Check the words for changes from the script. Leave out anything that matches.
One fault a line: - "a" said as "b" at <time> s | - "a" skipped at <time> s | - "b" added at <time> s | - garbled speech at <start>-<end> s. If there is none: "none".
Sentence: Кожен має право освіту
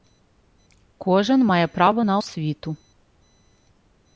- "на" added at 2.0 s